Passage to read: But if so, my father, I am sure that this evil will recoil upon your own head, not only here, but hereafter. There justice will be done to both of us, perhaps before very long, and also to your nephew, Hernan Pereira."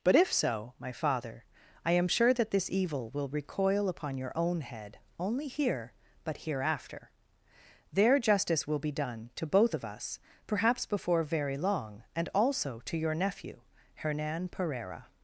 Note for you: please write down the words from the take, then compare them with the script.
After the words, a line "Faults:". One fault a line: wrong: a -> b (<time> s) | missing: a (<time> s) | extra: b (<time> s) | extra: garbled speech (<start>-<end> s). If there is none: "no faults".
But if so, my father, I am sure that this evil will recoil upon your own head, only here, but hereafter. There justice will be done to both of us, perhaps before very long, and also to your nephew, Hernan Pereira."
Faults:
missing: not (5.0 s)